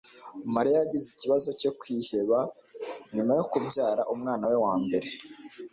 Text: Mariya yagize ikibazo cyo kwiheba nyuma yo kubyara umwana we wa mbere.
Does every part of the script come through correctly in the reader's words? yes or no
yes